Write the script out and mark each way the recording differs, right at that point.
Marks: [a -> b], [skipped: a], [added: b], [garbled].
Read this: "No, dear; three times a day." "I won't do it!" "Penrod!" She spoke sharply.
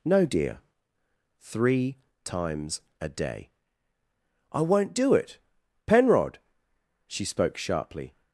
"No, dear; three times a day." "I won't do it!" "Penrod!" She spoke sharply.